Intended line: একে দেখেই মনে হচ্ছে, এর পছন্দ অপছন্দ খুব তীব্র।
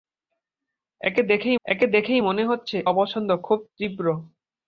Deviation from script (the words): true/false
true